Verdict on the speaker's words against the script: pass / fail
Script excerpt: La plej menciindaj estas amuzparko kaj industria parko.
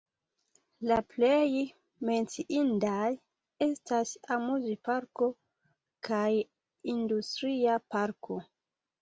pass